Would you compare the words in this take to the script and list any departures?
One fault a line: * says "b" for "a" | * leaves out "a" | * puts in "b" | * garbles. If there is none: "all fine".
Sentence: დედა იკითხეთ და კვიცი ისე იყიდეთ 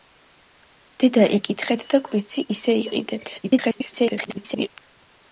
* garbles